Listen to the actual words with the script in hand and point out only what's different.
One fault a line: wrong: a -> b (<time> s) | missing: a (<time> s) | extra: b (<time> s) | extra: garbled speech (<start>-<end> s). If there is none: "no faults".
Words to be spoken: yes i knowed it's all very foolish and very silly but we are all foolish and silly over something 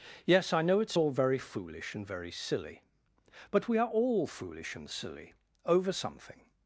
wrong: knowed -> know (0.6 s)